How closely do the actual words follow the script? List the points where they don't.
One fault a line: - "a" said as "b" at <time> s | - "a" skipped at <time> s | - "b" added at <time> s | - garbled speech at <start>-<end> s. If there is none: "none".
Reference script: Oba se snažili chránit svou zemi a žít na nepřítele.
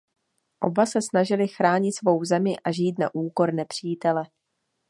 - "úkor" added at 3.1 s